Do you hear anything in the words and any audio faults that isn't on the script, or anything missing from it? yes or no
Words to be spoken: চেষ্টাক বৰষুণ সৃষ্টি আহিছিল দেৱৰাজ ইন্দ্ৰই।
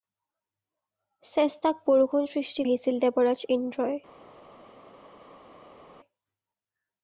no